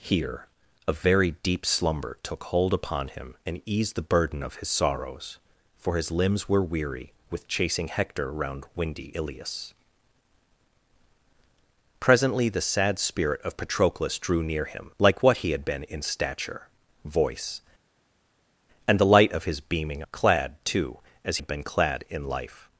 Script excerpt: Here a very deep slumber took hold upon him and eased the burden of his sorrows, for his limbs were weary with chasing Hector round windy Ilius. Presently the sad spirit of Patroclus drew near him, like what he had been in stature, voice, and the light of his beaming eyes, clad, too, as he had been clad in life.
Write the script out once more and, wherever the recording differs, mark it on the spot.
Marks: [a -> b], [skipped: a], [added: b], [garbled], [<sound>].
Here a very deep slumber took hold upon him and eased the burden of his sorrows, for his limbs were weary with chasing Hector round windy Ilius. Presently the sad spirit of Patroclus drew near him, like what he had been in stature, voice, and the light of his beaming [skipped: eyes,] clad, too, as [skipped: he] had been clad in life.